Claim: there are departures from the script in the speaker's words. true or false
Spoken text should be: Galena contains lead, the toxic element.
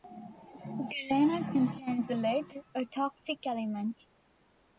true